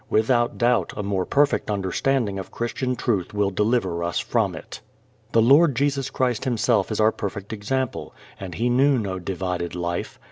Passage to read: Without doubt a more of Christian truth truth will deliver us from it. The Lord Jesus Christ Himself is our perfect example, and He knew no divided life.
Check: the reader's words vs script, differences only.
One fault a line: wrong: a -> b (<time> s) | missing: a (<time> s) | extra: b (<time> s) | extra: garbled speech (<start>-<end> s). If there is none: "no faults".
extra: perfect understanding (1.3 s)
missing: truth (3.3 s)